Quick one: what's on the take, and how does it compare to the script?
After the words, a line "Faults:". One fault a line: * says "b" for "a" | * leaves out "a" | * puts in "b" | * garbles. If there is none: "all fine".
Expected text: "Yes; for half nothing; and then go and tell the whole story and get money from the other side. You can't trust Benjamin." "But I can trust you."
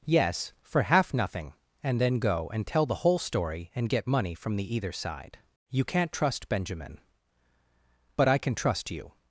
"Yes; for half nothing; and then go and tell the whole story and get money from the either side. You can't trust Benjamin." "But I can trust you."
Faults:
* says "either" for "other"